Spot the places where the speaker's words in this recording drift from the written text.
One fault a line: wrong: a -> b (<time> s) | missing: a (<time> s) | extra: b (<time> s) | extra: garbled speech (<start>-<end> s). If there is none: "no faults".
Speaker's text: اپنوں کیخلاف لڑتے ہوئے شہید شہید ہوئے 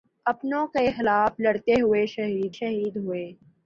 no faults